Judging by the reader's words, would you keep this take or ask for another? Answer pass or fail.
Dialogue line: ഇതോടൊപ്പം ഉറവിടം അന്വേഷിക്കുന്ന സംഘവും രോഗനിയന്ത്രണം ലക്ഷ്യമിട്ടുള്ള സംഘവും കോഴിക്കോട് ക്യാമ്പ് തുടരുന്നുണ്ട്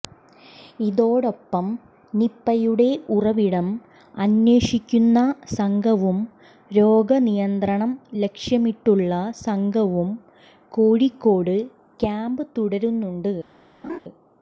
fail